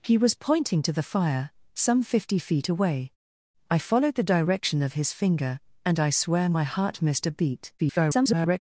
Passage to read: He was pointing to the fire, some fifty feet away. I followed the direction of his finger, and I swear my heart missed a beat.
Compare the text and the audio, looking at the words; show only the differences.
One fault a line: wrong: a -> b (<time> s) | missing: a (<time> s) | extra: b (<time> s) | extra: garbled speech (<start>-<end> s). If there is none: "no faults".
extra: garbled speech (7.8-8.6 s)